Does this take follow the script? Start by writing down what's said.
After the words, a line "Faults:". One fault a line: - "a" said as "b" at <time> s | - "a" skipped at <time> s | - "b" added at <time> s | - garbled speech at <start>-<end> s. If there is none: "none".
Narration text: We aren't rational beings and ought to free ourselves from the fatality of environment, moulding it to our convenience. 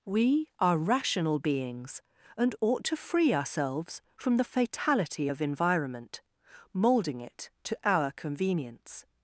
We are rational beings and ought to free ourselves from the fatality of environment, moulding it to our convenience.
Faults:
- "aren't" said as "are" at 0.6 s